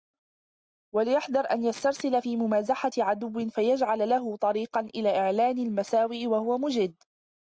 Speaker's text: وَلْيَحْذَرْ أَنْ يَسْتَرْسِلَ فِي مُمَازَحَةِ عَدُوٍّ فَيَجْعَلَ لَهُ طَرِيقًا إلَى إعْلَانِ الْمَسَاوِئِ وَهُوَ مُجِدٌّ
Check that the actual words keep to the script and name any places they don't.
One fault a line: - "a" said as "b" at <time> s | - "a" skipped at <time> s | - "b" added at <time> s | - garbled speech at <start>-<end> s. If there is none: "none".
none